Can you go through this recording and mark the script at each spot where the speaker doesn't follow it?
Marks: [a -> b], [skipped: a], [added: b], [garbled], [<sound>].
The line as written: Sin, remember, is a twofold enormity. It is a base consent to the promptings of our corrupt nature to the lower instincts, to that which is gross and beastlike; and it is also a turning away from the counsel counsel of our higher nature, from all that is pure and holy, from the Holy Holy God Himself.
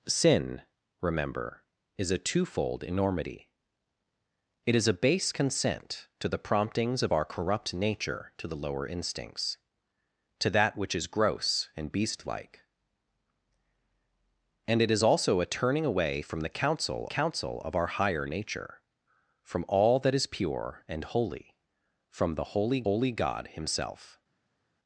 Sin, remember, is a twofold enormity. It is a base consent to the promptings of our corrupt nature to the lower instincts, to that which is gross and beastlike; and it is also a turning away from the counsel counsel of our higher nature, from all that is pure and holy, from the Holy Holy God Himself.